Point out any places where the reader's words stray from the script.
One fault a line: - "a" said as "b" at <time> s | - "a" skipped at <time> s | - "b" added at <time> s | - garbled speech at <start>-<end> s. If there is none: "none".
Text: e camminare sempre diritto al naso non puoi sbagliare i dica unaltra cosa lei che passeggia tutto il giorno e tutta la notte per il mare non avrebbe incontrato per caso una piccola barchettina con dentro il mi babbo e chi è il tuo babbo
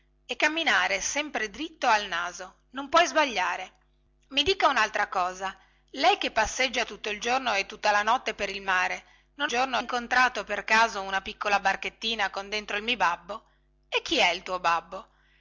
- "avrebbe" said as "giorno" at 9.5 s